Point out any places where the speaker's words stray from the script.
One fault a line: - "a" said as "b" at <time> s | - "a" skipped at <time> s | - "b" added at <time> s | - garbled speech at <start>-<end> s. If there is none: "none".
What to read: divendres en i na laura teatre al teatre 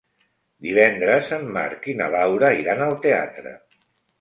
- "marc" added at 1.6 s
- "teatre" said as "iran" at 2.6 s